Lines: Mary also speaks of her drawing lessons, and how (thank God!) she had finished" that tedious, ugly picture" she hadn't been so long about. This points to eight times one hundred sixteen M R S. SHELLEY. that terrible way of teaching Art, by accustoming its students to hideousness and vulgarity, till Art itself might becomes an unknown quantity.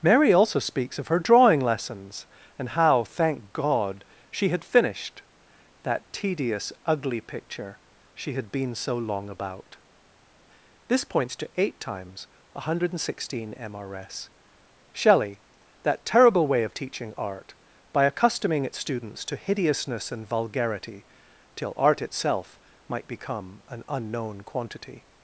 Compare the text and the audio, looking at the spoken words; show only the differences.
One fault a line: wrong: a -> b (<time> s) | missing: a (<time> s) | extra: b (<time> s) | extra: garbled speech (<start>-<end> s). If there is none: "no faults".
wrong: hadn't -> had (8.3 s)
wrong: becomes -> become (23.1 s)